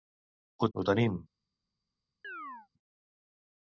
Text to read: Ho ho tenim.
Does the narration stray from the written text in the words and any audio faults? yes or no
yes